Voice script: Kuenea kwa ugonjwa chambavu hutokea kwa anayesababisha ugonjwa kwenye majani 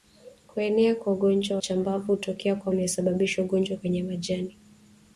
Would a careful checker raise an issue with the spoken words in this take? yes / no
no